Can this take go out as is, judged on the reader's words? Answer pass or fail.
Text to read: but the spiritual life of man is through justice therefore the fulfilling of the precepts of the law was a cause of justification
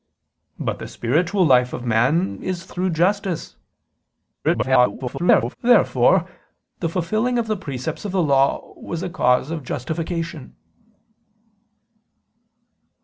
fail